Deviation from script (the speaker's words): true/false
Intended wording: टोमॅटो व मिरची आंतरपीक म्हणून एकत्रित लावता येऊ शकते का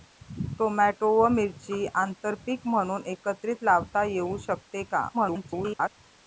true